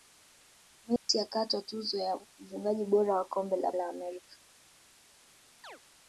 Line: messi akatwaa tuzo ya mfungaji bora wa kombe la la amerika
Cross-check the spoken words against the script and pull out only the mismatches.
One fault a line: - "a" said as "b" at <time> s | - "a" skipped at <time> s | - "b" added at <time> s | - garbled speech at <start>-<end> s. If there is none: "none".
none